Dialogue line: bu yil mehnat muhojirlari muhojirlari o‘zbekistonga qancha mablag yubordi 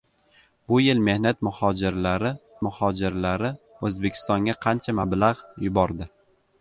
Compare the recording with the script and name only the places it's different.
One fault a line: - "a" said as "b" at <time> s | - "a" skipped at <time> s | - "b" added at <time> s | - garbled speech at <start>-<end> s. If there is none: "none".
none